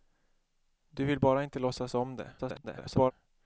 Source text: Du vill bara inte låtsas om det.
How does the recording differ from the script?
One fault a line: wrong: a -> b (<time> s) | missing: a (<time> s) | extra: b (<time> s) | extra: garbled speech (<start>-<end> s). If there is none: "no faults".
extra: garbled speech (2.4-3.1 s)